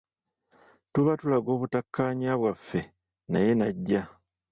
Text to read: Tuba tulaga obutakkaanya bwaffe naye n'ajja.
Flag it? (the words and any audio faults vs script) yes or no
no